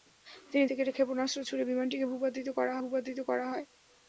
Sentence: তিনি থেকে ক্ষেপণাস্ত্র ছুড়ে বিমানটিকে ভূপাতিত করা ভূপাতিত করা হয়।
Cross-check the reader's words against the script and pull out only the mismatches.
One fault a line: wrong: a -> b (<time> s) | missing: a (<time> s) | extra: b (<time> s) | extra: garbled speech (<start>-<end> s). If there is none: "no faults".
no faults